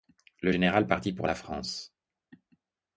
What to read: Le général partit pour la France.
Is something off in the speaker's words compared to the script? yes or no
no